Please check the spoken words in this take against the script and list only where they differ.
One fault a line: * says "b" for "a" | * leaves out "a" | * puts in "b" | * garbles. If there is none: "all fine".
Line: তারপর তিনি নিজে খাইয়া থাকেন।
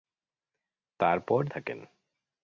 * leaves out "তিনি নিজে খাইয়া"